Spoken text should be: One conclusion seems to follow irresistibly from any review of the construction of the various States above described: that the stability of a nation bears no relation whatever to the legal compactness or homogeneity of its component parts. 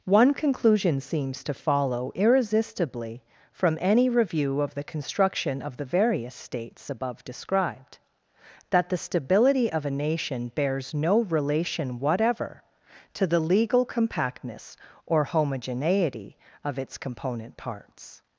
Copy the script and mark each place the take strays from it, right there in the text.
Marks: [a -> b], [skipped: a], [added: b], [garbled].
One conclusion seems to follow irresistibly from any review of the construction of the various States above described: that the stability of a nation bears no relation whatever to the legal compactness or homogeneity of its component parts.